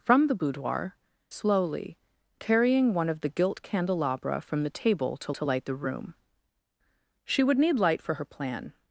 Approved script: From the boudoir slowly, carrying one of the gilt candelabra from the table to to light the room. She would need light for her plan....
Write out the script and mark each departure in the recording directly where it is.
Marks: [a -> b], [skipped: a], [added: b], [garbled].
From the boudoir slowly, carrying one of the gilt candelabra from the table to to light the room. She would need light for her plan....